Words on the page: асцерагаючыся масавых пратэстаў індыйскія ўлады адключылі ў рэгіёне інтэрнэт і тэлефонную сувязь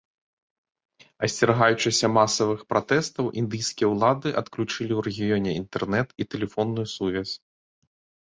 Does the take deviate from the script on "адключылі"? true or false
false